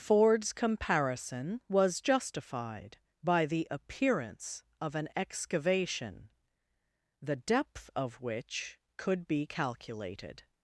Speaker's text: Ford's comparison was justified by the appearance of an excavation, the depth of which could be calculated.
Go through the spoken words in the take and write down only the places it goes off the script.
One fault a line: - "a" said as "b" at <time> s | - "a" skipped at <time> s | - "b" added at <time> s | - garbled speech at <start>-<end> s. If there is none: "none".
none